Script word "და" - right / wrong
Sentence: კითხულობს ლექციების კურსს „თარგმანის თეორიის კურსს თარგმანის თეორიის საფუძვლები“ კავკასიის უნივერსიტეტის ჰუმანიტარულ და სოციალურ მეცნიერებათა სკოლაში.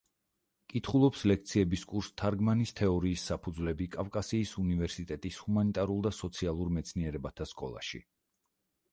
right